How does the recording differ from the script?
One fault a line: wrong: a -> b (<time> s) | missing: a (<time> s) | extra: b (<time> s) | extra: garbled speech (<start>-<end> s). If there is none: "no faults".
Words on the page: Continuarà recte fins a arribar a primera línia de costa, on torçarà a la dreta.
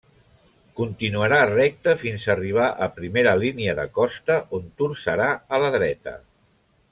no faults